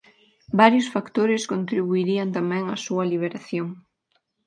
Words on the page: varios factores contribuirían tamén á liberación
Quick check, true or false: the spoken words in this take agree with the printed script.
false